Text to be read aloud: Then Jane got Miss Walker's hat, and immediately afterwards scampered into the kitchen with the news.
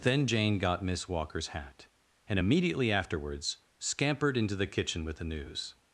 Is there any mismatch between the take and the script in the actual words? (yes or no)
no